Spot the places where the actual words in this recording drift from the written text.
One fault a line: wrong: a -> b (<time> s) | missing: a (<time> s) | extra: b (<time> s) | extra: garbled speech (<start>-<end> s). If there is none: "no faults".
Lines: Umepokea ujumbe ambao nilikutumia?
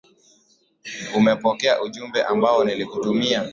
no faults